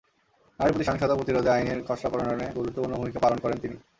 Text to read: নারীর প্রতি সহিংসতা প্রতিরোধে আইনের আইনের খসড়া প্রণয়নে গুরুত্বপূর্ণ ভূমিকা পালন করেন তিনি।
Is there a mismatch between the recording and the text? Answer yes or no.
yes